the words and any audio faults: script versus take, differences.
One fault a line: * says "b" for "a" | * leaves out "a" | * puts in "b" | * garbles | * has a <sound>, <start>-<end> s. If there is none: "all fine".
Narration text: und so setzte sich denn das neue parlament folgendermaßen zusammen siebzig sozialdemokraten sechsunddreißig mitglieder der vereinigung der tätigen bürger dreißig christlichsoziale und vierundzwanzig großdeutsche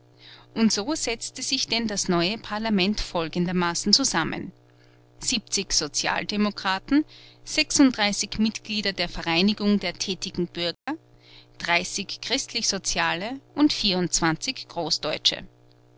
* has a dropout, 10.7-10.9 s